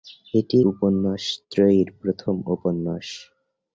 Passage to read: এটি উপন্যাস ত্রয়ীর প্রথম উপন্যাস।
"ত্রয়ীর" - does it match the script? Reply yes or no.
yes